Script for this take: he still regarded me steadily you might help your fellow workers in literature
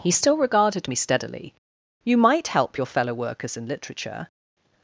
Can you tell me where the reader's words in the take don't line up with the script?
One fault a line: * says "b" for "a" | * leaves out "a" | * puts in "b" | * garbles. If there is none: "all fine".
all fine